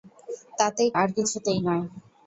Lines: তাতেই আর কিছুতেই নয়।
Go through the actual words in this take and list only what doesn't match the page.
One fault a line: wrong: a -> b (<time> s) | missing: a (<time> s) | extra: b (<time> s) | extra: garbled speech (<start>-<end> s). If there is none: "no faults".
no faults